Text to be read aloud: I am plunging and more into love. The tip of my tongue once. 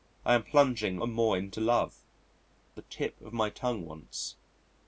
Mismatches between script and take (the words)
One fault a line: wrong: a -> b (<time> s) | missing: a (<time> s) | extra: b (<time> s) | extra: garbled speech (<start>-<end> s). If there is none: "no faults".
no faults